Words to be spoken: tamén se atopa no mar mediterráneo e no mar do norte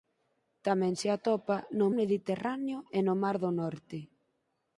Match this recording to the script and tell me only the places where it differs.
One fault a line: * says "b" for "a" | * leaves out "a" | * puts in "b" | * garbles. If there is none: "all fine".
* leaves out "mar"